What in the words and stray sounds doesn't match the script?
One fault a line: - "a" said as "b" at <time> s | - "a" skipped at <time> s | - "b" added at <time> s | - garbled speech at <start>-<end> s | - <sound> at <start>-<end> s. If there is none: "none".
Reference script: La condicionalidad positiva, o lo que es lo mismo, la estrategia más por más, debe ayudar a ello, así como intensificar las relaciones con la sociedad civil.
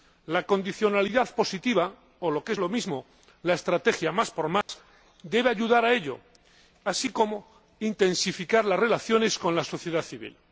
- dropout at 4.6-4.7 s